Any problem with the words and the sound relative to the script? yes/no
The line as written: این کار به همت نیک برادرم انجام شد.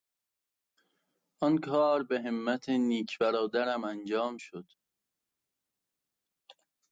yes